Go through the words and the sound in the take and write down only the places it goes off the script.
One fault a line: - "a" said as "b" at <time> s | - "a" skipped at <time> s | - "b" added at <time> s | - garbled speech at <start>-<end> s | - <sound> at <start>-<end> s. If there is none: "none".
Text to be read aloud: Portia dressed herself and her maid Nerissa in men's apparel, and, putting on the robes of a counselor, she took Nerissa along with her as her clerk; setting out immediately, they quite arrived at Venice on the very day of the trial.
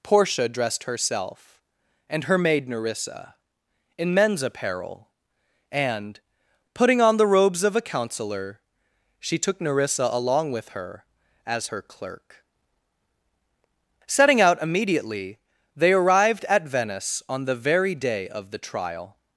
- "quite" skipped at 15.9 s